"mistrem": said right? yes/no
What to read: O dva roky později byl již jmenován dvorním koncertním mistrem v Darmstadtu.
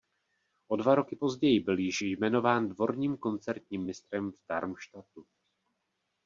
yes